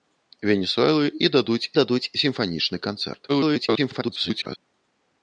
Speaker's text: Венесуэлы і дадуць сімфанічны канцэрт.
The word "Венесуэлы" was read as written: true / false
true